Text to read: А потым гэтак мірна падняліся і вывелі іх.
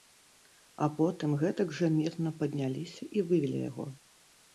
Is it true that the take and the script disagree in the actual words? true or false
true